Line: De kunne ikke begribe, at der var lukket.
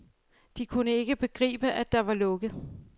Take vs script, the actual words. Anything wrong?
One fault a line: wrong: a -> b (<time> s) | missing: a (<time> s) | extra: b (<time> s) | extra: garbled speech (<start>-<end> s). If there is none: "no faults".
no faults